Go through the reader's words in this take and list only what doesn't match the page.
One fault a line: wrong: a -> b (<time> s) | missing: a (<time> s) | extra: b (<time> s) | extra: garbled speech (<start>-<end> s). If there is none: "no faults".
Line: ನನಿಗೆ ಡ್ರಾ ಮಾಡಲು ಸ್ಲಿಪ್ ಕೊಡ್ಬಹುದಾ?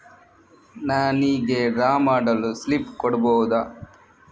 no faults